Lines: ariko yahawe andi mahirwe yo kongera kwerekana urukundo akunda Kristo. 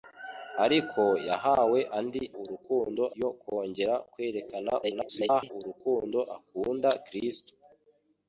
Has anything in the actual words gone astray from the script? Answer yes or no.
yes